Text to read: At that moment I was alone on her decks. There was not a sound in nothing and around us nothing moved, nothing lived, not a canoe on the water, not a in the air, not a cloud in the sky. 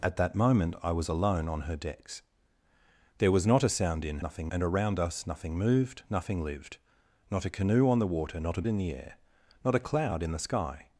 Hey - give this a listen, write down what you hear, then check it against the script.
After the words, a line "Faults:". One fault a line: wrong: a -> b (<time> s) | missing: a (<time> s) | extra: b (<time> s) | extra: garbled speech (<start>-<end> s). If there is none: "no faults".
At that moment I was alone on her decks. There was not a sound in nothing and around us nothing moved, nothing lived, not a canoe on the water, not a in the air, not a cloud in the sky.
Faults:
no faults